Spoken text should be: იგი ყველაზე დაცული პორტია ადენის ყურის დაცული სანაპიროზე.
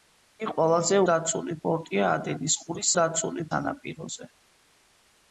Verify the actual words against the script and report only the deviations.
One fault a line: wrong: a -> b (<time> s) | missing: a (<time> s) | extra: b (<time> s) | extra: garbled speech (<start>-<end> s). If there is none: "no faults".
no faults